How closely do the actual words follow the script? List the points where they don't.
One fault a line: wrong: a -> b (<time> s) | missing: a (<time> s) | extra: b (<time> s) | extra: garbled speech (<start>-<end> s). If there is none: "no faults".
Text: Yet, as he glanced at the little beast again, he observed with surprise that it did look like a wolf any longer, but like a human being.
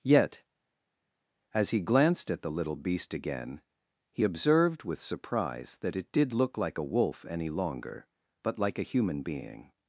no faults